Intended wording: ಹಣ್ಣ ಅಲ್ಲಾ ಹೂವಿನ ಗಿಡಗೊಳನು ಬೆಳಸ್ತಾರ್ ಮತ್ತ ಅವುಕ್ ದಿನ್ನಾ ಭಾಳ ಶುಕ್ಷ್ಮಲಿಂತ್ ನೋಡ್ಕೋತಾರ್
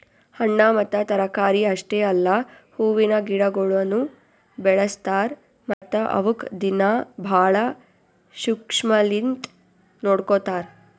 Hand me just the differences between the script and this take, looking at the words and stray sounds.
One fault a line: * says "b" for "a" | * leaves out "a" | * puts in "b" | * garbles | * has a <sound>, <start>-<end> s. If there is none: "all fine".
* puts in "ಮತ್ತ ತರಕಾರಿ ಅಷ್ಟೆ"
* has a dropout, 5.7-5.8 s